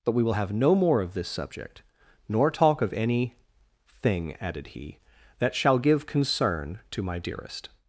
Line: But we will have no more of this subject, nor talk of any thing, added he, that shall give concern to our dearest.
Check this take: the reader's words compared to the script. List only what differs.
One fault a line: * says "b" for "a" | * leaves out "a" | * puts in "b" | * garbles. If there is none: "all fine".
* says "my" for "our"